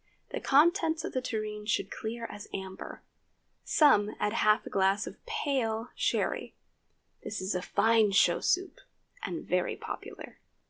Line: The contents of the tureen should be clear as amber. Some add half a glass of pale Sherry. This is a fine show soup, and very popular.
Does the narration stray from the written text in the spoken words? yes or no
yes